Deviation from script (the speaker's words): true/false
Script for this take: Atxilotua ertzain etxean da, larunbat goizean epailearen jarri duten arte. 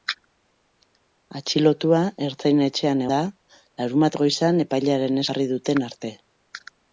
false